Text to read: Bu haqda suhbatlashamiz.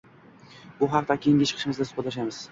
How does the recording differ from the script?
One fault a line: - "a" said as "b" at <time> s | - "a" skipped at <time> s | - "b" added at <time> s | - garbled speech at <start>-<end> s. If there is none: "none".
- "keyingi chiqishimizda" added at 1.3 s